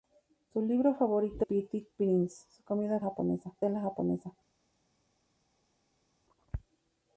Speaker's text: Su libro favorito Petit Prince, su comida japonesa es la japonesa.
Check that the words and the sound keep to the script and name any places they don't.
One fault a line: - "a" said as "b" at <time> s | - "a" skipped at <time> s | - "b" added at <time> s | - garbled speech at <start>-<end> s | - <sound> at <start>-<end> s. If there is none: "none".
none